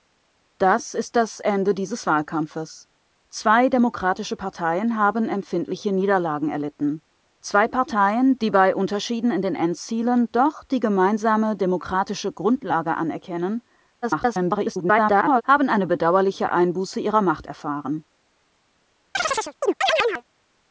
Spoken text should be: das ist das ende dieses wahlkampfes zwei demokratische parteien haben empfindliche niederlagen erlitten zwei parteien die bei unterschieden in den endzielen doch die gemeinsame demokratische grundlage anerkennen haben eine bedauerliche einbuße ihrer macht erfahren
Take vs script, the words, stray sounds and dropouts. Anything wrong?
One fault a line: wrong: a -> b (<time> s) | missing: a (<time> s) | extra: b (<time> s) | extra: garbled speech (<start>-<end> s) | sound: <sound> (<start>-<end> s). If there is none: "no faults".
extra: garbled speech (14.0-15.4 s)
sound: chirp (19.1-20.2 s)